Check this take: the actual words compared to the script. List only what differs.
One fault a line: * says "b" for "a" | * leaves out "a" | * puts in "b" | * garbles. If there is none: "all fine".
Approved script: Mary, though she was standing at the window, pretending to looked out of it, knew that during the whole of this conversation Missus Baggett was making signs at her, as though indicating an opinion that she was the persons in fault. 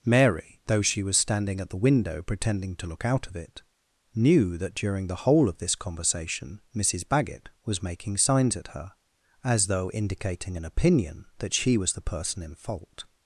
* says "look" for "looked"
* says "person" for "persons"